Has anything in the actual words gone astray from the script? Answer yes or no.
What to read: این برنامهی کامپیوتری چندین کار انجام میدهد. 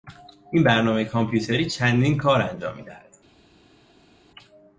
no